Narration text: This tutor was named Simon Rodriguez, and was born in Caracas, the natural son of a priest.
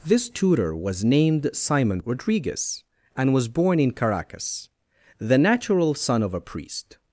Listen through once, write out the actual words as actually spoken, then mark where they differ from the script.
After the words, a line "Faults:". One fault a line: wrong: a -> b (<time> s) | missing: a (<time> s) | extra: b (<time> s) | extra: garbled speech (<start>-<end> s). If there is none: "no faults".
This tutor was named Simon Rodriguez, and was born in Caracas, the natural son of a priest.
Faults:
no faults